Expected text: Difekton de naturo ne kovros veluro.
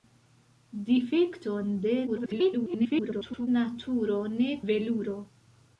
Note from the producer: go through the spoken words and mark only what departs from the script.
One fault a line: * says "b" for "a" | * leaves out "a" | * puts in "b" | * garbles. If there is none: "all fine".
* garbles
* leaves out "kovros"